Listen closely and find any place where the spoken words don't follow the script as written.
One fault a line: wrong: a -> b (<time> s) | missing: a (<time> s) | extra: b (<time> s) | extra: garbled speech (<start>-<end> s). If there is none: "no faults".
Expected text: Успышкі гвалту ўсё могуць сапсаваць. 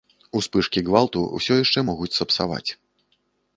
extra: яшчэ (1.6 s)